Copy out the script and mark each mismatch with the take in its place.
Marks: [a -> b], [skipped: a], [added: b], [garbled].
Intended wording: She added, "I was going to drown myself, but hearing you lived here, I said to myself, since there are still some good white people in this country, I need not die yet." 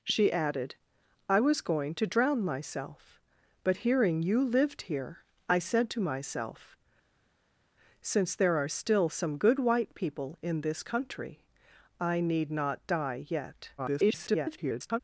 She added, "I was going to drown myself, but hearing you lived here, I said to myself, since there are still some good white people in this country, I need not die yet." [garbled]